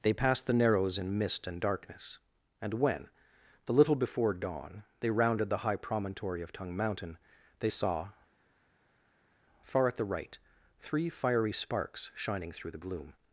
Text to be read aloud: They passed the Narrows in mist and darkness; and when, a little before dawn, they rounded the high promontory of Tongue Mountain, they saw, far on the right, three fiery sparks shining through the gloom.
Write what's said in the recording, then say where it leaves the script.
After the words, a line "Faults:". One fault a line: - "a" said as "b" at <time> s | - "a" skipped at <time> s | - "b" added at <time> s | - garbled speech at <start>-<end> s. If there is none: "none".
They passed the Narrows in mist and darkness; and when, the little before dawn, they rounded the high promontory of Tongue Mountain, they saw, far at the right, three fiery sparks shining through the gloom.
Faults:
- "a" said as "the" at 3.6 s
- "on" said as "at" at 9.9 s